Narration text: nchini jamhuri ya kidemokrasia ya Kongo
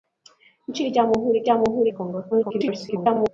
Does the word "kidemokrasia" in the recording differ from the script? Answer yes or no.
yes